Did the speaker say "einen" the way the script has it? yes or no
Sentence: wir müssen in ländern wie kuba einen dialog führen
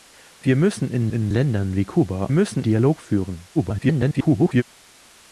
no